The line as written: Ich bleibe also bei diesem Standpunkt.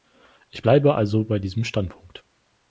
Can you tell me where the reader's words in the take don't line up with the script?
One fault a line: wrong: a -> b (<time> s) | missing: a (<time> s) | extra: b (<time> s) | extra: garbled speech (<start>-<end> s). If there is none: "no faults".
no faults